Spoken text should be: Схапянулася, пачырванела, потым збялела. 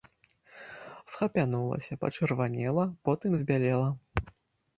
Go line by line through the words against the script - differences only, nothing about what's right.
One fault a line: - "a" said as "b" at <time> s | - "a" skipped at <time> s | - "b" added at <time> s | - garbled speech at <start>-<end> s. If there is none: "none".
none